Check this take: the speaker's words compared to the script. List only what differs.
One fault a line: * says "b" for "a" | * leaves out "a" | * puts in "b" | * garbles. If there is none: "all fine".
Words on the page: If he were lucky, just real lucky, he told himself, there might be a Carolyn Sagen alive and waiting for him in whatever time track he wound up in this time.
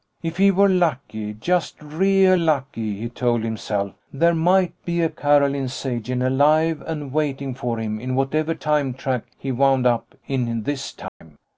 all fine